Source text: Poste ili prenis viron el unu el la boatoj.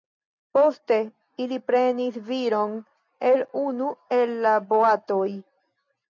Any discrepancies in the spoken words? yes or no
no